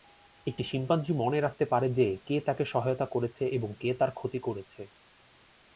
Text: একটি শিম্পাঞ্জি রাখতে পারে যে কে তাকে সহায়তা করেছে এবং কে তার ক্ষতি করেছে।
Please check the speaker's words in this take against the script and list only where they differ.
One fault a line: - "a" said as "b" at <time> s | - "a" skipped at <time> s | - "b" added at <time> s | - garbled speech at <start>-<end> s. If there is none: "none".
- "মনে" added at 1.1 s